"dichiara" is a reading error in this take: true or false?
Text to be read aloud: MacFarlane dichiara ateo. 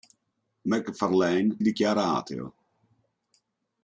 false